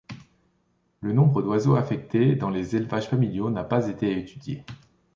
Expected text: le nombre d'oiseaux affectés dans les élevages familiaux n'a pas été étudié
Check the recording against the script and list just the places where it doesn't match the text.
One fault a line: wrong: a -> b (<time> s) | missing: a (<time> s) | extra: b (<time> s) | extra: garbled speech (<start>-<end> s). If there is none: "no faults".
no faults